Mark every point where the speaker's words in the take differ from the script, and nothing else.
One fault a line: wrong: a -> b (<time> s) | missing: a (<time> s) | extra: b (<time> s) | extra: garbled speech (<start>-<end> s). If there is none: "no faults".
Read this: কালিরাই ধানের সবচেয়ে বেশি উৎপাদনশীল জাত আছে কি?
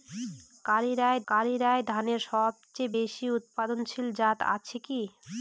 extra: কালিরাই (1.3 s)